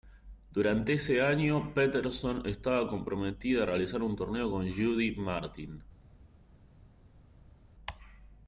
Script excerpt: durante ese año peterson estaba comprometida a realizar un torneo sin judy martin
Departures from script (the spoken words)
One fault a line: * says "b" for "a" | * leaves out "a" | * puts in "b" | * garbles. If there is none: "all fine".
* says "con" for "sin"